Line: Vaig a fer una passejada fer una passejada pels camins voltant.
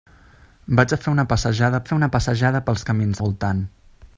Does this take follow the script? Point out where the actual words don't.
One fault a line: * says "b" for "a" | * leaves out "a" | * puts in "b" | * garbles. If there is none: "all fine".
all fine